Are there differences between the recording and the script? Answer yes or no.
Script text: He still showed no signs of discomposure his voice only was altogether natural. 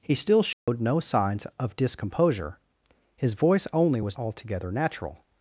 no